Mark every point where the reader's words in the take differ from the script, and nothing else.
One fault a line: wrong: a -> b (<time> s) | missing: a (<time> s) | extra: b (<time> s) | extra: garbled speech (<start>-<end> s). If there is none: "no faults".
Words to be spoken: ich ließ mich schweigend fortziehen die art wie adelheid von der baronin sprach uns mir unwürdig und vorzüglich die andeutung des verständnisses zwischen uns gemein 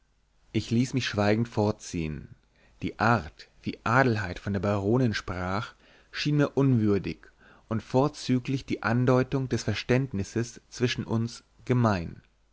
wrong: uns -> schien (6.1 s)